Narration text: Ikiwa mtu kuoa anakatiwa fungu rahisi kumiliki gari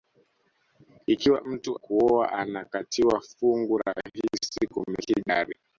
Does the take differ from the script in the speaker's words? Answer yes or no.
no